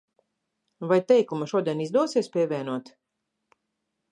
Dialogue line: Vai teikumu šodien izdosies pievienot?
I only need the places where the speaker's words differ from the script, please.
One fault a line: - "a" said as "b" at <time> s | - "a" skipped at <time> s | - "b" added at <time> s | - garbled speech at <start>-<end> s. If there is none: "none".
none